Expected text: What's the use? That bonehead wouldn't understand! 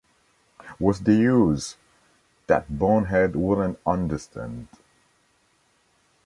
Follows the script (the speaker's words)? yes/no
yes